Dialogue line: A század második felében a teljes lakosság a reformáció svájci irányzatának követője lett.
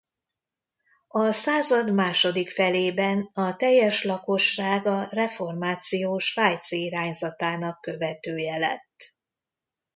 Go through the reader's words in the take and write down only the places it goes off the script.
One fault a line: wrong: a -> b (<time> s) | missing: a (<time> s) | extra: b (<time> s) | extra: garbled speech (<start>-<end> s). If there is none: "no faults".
no faults